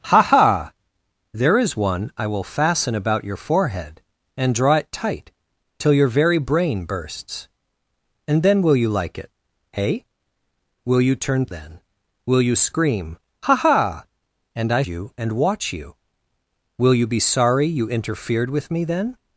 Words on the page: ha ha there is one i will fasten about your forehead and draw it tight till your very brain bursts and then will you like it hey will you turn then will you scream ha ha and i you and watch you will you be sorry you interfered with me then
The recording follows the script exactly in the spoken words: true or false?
true